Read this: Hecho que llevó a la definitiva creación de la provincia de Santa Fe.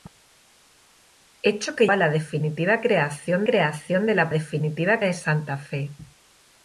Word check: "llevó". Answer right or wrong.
wrong